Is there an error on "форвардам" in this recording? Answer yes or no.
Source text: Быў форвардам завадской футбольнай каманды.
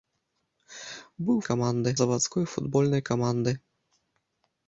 yes